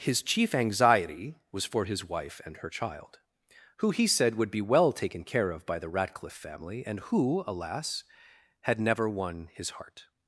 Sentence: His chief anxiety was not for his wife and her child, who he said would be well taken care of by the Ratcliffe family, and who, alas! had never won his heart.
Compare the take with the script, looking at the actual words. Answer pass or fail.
fail